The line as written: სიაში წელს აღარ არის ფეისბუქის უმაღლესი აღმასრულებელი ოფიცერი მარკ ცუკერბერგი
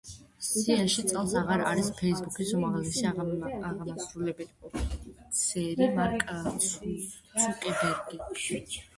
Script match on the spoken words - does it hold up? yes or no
yes